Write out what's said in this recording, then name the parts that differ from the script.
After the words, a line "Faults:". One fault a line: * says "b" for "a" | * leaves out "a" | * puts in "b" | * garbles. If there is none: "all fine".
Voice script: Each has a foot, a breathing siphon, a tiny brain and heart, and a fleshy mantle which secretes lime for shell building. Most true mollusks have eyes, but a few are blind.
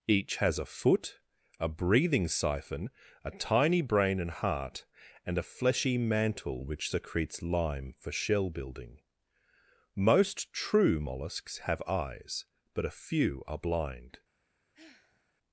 Each has a foot, a breathing siphon, a tiny brain and heart, and a fleshy mantle which secretes lime for shell building. Most true mollusks have eyes, but a few are blind.
Faults:
all fine